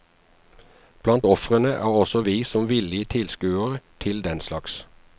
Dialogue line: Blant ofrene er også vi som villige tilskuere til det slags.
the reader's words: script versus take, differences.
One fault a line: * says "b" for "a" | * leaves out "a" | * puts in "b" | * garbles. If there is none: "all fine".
* says "den" for "det"